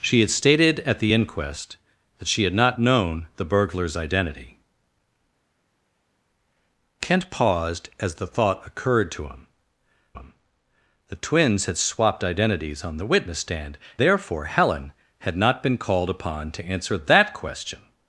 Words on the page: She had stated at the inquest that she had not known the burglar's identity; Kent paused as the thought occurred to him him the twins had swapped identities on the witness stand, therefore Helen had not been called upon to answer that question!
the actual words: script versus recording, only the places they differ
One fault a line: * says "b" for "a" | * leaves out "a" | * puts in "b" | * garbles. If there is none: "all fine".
all fine